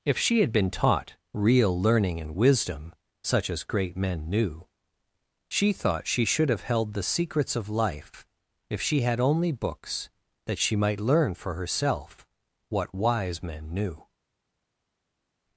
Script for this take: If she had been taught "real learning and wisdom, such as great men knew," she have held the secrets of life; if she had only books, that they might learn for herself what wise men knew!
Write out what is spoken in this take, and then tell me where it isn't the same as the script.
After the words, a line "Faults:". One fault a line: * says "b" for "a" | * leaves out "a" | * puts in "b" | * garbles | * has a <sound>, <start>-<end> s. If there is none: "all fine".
If she had been taught "real learning and wisdom, such as great men knew," she thought she should have held the secrets of life; if she had only books, that she might learn for herself what wise men knew!
Faults:
* puts in "thought she should"
* says "she" for "they"